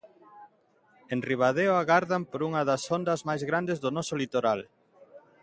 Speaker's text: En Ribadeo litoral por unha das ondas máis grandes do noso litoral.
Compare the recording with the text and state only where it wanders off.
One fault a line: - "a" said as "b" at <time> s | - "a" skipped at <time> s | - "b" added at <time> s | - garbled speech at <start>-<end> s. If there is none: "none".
- "litoral" said as "agardan" at 1.8 s